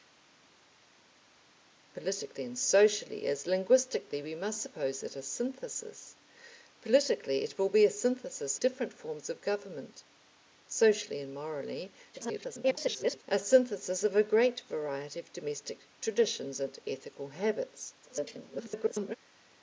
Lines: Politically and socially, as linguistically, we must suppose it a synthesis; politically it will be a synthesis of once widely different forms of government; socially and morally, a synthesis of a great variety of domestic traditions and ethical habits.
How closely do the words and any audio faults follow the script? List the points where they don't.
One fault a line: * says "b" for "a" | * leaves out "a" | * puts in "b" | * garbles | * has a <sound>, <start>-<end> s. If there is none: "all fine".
* leaves out "of once widely"
* garbles
* garbles